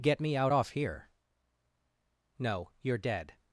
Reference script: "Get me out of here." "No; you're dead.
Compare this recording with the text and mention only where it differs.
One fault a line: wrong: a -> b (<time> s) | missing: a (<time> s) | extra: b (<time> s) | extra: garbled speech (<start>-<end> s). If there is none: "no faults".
wrong: of -> off (0.5 s)